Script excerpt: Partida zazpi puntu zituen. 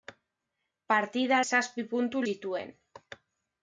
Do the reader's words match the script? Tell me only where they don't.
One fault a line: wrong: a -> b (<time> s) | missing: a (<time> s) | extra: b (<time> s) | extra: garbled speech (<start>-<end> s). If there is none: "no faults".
no faults